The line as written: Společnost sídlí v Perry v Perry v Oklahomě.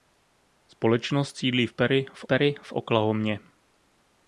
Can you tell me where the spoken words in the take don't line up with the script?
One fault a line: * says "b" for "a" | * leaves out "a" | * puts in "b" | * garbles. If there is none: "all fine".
all fine